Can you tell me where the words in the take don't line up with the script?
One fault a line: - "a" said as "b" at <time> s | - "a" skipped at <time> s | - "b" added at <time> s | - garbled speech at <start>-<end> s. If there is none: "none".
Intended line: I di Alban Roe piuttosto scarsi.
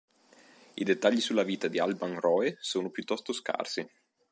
- "dettagli sulla vita" added at 0.8 s
- "sono" added at 2.6 s